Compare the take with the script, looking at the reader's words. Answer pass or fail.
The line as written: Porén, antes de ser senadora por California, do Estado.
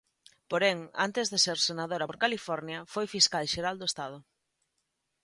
fail